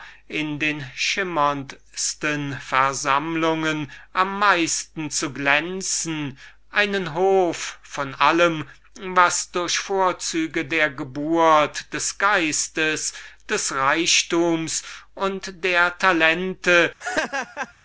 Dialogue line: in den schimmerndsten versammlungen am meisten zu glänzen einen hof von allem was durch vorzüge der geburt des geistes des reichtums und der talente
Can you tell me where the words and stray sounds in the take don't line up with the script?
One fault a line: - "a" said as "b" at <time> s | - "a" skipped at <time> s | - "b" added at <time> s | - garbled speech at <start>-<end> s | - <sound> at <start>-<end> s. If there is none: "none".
- laugh at 17.0-17.7 s